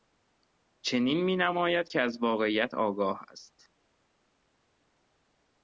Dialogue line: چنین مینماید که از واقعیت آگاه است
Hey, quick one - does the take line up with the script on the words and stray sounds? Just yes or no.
yes